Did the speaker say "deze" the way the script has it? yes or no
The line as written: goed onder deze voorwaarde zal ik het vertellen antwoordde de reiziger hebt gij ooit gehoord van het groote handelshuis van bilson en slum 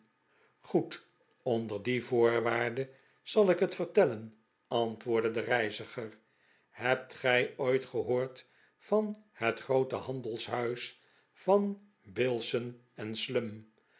no